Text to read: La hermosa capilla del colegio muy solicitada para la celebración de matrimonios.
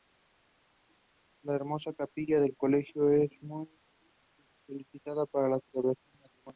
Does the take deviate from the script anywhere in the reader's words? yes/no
yes